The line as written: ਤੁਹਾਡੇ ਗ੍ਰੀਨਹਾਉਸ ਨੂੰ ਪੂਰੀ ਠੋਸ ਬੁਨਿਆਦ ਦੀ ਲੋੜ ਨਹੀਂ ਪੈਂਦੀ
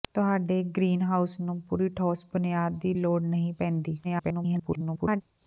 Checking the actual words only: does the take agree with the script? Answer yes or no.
no